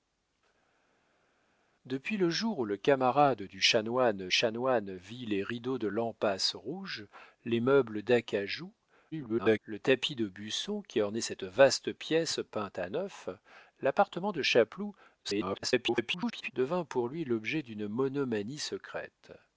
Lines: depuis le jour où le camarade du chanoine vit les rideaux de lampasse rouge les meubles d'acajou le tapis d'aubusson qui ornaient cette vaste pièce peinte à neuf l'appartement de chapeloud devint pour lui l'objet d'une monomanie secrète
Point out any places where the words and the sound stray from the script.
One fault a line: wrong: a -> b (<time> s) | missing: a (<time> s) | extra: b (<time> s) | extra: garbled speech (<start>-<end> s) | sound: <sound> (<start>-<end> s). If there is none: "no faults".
extra: chanoine (4.3 s)
extra: garbled speech (9.1-9.6 s)
extra: garbled speech (15.2-16.5 s)